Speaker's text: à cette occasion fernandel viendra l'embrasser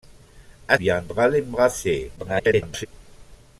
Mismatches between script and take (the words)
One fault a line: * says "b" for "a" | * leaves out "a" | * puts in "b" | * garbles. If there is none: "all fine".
* leaves out "cette occasion fernandel"
* garbles